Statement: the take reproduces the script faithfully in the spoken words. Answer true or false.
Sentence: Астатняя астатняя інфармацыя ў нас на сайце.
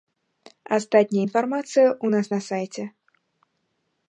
false